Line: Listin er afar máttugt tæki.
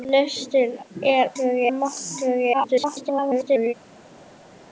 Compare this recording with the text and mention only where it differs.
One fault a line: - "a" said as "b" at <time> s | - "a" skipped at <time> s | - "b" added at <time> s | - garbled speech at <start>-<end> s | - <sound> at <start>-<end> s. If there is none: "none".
- "afar" said as "tæki" at 1.4 s
- garbled speech at 2.5-3.7 s